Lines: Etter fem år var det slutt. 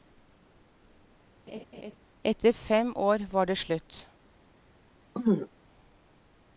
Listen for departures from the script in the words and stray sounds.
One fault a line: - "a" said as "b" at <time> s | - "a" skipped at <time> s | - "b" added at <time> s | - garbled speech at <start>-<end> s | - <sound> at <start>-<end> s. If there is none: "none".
- laugh at 1.5-2.0 s
- throat clearing at 5.1-5.5 s